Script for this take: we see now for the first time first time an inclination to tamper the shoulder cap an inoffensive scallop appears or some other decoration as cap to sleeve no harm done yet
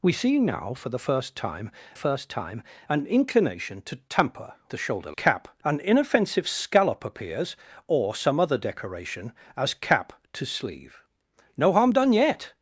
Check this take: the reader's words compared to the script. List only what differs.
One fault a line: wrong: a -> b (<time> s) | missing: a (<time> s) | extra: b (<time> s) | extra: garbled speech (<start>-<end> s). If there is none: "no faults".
no faults